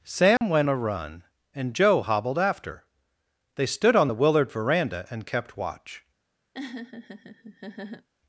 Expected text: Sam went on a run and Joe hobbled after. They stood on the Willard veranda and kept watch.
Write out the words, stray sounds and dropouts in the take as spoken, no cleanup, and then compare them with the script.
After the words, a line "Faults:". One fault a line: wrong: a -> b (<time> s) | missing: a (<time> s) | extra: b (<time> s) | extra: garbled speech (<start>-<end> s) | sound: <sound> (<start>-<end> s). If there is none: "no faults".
Sam went a run and Joe hobbled after. They stood on the Willard veranda and kept watch.
Faults:
sound: dropout (0.4-0.4 s)
missing: on (0.7 s)
sound: laugh (6.5-8.1 s)